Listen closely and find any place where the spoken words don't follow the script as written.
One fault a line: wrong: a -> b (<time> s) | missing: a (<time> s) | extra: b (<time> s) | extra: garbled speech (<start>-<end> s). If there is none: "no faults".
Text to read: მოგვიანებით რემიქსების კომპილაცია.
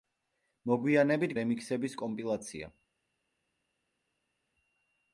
no faults